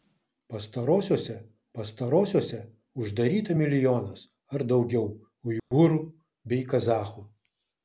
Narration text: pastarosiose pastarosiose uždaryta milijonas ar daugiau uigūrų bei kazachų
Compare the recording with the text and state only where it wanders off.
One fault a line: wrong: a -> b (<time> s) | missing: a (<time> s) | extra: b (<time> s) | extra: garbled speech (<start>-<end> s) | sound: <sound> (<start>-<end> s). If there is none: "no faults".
sound: dropout (5.6-5.7 s)